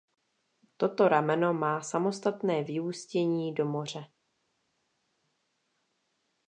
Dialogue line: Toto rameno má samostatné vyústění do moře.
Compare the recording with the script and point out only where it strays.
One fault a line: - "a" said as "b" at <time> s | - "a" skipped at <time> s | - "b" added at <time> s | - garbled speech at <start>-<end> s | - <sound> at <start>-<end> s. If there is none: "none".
none